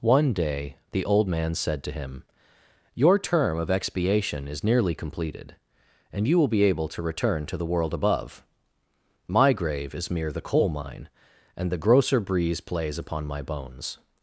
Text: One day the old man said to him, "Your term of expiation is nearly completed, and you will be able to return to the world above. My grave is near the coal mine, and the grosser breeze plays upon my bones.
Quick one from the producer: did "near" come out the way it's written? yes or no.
no